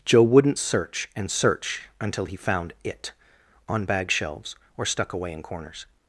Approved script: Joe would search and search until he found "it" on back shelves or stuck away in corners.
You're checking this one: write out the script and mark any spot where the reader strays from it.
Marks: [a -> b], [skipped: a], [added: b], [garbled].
Joe [would -> wouldn't] search and search until he found "it" on [back -> bag] shelves or stuck away in corners.